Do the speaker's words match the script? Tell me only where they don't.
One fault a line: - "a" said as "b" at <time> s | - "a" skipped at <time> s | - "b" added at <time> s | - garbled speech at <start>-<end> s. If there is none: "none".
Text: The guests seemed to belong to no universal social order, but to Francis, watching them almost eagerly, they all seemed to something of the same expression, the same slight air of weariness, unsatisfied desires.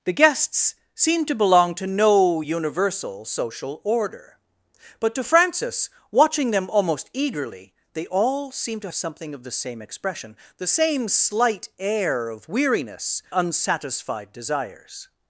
none